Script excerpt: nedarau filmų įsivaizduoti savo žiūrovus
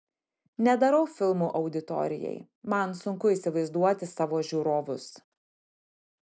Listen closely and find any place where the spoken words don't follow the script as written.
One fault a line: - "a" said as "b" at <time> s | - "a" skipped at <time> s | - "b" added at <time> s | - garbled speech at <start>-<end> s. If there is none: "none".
- "auditorijai man sunku" added at 1.6 s